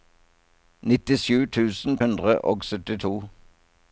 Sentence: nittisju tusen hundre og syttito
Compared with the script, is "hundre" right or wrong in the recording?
right